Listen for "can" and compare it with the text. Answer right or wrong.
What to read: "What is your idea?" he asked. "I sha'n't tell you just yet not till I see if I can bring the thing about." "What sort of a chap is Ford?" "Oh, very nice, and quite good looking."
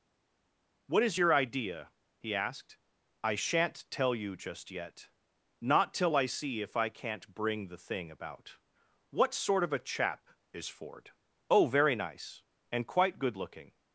wrong